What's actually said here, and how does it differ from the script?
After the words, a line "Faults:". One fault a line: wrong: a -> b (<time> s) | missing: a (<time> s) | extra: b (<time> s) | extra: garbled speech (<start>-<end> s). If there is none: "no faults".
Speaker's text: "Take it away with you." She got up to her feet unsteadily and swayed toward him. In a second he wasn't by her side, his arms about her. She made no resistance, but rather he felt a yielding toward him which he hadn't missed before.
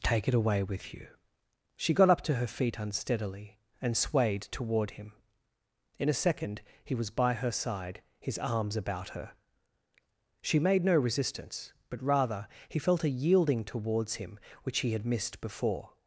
"Take it away with you." She got up to her feet unsteadily and swayed toward him. In a second he was by her side, his arms about her. She made no resistance, but rather he felt a yielding towards him which he had missed before.
Faults:
wrong: wasn't -> was (7.0 s)
wrong: toward -> towards (13.6 s)
wrong: hadn't -> had (14.9 s)